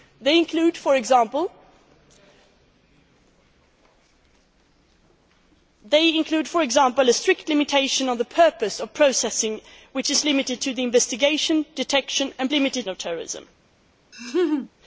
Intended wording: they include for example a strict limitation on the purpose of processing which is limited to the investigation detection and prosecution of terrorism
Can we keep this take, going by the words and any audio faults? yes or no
no